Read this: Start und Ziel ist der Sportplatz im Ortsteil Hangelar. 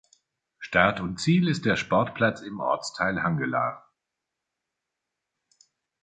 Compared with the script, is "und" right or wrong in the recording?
right